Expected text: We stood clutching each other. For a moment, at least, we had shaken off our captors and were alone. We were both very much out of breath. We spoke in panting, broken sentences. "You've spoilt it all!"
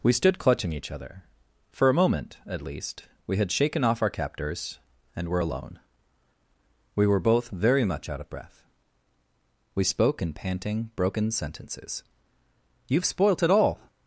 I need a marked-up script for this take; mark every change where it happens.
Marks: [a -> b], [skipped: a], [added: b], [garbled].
We stood clutching each other. For a moment, at least, we had shaken off our captors and were alone. We were both very much out of breath. We spoke in panting, broken sentences. "You've spoilt it all!"